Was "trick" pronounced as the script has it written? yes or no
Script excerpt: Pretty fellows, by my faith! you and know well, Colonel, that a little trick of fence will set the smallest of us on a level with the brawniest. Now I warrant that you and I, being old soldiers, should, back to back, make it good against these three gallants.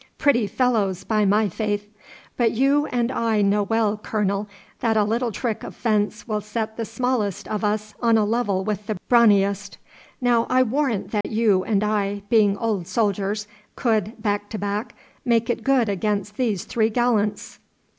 yes